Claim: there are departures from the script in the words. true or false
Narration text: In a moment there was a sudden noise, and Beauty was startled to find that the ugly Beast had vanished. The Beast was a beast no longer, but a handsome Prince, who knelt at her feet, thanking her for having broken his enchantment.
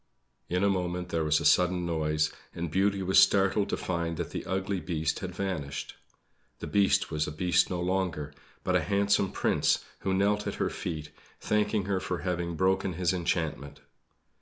false